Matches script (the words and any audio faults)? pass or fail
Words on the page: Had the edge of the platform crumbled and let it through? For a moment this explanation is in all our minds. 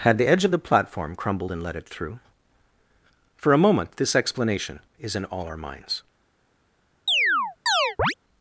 fail